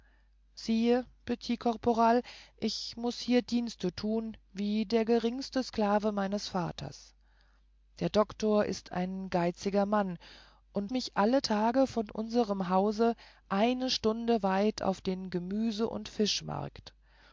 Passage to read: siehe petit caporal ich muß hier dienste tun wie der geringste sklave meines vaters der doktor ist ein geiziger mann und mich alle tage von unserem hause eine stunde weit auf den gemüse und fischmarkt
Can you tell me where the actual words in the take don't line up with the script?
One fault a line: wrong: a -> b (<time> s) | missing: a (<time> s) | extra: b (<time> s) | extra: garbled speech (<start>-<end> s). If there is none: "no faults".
no faults